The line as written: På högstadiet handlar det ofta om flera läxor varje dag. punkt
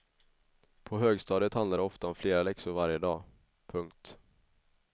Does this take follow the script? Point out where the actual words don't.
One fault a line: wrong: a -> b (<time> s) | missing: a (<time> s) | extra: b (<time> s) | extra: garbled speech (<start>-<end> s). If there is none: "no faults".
no faults